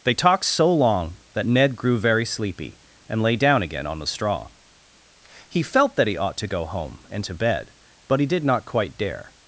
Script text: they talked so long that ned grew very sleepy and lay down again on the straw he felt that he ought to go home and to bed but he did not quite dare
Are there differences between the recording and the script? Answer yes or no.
no